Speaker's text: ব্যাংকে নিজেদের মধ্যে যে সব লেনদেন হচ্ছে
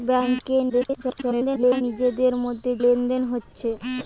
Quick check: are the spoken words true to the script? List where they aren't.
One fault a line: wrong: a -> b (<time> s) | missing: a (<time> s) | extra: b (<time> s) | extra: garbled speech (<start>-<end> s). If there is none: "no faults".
extra: garbled speech (0.7-1.8 s)
missing: যে সব (2.7 s)